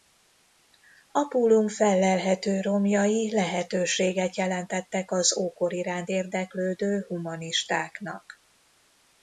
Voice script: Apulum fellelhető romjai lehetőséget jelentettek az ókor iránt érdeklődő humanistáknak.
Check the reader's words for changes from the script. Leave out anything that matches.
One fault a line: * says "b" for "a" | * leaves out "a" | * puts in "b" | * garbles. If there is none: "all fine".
all fine